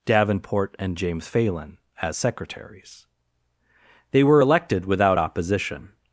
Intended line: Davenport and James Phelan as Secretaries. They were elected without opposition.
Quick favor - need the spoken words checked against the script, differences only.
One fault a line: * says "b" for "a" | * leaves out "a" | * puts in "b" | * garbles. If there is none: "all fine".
all fine